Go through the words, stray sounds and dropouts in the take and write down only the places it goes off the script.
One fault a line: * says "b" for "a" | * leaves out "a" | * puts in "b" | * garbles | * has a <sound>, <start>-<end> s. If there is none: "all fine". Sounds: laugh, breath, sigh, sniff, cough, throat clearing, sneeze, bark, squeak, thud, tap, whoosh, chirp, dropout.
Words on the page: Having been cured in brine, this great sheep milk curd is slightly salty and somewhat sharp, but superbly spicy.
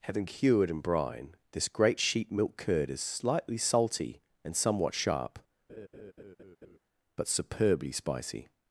* leaves out "been"
* has a laugh, 5.7-6.8 s